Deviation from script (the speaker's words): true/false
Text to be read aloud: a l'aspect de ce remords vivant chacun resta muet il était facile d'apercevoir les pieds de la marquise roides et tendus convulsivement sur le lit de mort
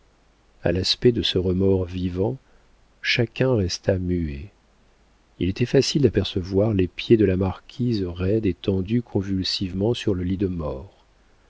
false